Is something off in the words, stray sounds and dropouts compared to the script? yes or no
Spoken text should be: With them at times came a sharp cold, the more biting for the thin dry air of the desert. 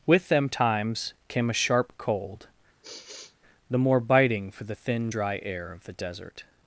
yes